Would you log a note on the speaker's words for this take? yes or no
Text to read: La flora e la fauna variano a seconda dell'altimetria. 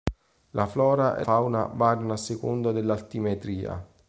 yes